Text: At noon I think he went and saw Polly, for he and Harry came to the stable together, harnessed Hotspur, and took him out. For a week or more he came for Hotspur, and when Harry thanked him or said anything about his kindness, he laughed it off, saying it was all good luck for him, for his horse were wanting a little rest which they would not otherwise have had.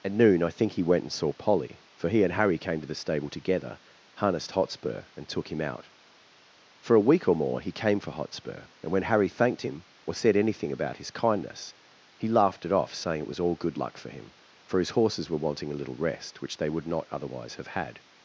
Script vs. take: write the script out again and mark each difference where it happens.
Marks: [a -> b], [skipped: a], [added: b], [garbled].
At noon I think he went and saw Polly, for he and Harry came to the stable together, harnessed Hotspur, and took him out. For a week or more he came for Hotspur, and when Harry thanked him or said anything about his kindness, he laughed it off, saying it was all good luck for him, for his [horse -> horses] were wanting a little rest which they would not otherwise have had.